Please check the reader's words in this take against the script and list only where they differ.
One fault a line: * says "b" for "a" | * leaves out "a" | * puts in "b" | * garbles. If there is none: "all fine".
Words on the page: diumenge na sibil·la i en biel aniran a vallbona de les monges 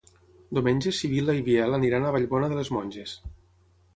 all fine